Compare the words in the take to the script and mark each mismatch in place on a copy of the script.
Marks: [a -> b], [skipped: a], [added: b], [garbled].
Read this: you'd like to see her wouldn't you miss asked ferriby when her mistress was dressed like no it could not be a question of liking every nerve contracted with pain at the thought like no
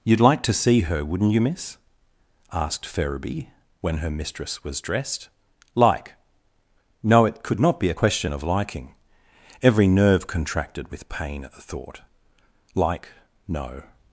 you'd like to see her wouldn't you miss asked ferriby when her mistress was dressed like no it could not be a question of liking every nerve contracted with pain at the thought like no